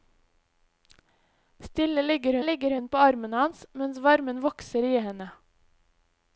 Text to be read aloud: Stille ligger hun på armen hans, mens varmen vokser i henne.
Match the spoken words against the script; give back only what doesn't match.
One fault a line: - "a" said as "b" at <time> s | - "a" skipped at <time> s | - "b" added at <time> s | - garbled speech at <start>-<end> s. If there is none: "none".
- "ligger" added at 2.4 s